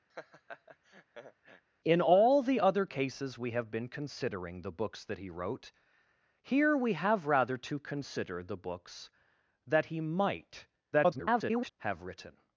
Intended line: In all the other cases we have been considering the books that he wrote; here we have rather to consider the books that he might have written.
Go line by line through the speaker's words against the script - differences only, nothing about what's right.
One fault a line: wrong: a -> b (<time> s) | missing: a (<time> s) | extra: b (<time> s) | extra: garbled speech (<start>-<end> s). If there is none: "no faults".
extra: garbled speech (10.9-11.7 s)